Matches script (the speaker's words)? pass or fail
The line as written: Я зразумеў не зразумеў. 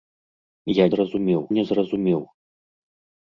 pass